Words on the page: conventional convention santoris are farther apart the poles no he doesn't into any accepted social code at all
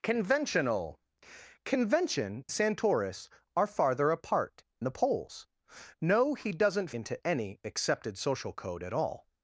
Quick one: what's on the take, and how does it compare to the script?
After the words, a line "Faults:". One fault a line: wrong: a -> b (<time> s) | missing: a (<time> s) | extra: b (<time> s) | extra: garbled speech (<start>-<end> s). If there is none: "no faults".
conventional convention santoris are farther apart the poles no he doesn't into any accepted social code at all
Faults:
no faults